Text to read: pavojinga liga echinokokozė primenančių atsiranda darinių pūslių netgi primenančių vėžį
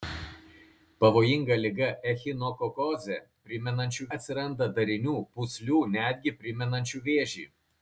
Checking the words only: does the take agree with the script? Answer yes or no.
yes